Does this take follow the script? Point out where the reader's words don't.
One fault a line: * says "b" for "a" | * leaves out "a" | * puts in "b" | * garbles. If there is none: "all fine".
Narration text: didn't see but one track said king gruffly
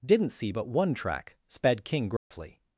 * says "sped" for "said"